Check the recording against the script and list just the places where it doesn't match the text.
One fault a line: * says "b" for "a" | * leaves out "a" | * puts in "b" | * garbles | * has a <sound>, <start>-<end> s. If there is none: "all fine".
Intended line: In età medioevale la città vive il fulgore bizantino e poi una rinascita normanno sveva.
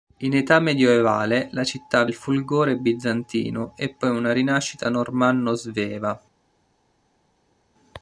* leaves out "vive"